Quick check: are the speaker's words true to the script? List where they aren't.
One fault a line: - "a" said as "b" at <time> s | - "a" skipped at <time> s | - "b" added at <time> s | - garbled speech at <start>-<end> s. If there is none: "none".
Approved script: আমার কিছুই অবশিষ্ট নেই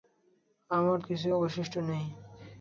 none